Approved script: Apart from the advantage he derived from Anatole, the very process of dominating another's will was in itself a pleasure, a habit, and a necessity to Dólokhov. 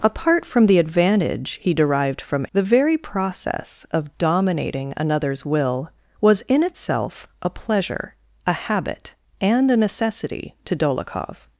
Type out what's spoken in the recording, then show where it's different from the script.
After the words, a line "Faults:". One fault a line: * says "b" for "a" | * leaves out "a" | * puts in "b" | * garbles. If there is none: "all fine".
Apart from the advantage he derived from The very process of dominating another's will was in itself a pleasure, a habit, and a necessity to Dólokhov.
Faults:
* leaves out "Anatole"